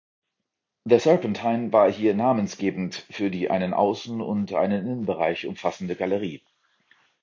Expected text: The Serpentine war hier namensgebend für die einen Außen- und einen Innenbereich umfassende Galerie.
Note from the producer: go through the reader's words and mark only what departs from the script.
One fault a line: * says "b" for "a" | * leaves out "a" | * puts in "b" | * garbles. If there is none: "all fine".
all fine